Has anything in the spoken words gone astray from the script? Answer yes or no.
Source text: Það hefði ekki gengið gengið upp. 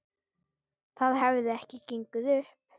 yes